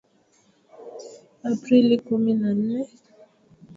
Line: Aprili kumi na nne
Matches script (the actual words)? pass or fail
pass